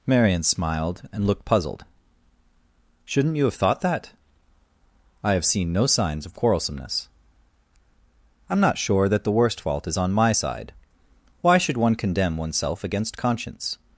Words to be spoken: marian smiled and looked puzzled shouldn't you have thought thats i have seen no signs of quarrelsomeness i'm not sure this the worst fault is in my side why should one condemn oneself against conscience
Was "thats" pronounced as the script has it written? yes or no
no